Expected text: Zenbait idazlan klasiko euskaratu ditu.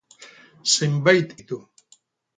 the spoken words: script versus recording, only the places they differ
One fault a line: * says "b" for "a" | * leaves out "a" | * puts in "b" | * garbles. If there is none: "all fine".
* leaves out "idazlan klasiko euskaratu"